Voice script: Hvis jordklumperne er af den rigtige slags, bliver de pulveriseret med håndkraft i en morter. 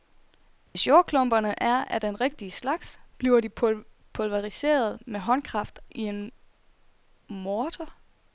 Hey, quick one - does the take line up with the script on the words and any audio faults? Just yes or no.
no